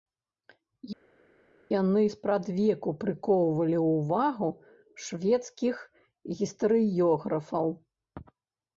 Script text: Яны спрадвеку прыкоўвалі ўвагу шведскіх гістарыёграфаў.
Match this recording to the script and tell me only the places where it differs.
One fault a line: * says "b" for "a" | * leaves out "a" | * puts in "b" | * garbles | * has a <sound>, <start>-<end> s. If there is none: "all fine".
all fine